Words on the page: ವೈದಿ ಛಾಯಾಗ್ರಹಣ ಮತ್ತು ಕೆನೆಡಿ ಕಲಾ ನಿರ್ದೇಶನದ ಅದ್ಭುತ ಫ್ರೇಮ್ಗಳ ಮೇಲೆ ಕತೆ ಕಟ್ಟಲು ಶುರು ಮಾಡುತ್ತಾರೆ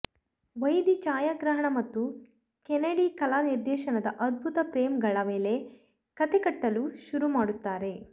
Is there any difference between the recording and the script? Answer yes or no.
no